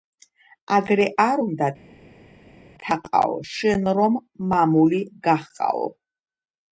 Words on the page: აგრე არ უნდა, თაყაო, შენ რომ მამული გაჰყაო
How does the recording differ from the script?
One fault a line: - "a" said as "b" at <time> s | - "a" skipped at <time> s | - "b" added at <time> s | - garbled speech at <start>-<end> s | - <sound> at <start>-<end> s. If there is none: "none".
none